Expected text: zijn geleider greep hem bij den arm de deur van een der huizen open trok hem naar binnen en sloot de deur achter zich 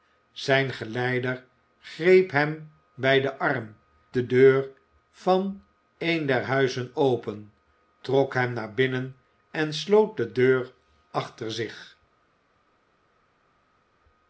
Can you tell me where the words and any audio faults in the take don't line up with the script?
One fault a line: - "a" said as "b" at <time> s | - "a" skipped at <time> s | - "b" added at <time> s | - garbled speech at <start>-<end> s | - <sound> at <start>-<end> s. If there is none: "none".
none